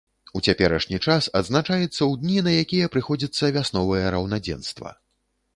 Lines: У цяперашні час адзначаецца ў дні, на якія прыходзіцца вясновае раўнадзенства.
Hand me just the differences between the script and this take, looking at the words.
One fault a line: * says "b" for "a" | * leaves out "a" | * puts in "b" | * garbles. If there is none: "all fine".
all fine